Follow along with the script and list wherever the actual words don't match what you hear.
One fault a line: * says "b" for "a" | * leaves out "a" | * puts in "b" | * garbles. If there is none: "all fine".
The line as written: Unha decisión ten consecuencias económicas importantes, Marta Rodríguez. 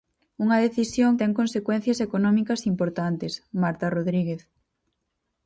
all fine